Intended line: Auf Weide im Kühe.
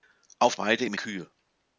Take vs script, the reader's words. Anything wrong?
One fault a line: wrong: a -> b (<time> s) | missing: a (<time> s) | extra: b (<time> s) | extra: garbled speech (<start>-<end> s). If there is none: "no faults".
no faults